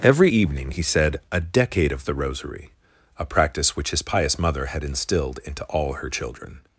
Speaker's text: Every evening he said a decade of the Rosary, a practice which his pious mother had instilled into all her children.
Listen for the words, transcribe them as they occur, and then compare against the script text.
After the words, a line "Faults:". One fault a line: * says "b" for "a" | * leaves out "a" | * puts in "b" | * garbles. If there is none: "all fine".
Every evening he said a decade of the Rosary, a practice which his pious mother had instilled into all her children.
Faults:
all fine